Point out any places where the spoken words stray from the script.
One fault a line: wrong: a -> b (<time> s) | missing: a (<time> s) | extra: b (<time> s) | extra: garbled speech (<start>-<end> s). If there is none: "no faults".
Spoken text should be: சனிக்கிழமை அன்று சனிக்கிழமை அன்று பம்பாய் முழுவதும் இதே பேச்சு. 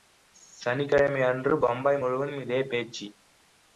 missing: சனிக்கிழமை அன்று (1.6 s)